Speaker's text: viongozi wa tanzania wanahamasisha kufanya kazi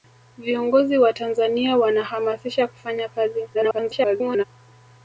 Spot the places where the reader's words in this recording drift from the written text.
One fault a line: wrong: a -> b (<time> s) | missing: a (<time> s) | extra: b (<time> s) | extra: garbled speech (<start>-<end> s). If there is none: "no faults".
extra: garbled speech (3.5-4.4 s)